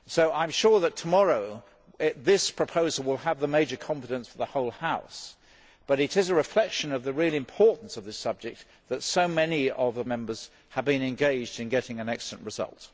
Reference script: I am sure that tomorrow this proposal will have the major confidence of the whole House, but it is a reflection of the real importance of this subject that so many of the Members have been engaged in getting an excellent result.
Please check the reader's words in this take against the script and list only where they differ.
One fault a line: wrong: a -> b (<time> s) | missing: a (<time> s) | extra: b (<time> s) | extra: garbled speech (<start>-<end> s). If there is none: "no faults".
no faults